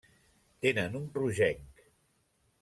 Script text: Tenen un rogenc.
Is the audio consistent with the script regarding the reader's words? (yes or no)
yes